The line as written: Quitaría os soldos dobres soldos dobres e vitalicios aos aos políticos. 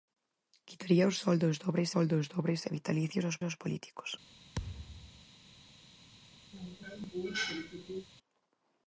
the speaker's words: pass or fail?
pass